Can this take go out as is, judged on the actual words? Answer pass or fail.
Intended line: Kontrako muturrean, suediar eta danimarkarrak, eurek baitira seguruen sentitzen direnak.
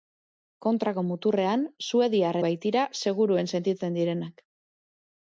fail